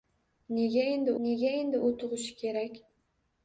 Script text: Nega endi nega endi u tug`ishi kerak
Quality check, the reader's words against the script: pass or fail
pass